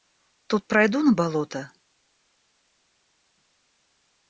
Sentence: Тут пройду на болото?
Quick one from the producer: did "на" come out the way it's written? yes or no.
yes